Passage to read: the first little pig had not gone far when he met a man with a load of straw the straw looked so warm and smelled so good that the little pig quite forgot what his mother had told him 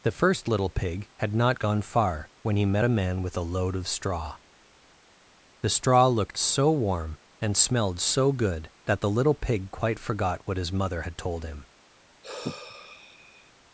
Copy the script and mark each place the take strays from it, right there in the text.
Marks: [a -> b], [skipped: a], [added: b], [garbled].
the first little pig had not gone far when he met a man with a load of straw the straw looked so warm and smelled so good that the little pig quite forgot what his mother had told him